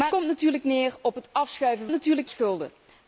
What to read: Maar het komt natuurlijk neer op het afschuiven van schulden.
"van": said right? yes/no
no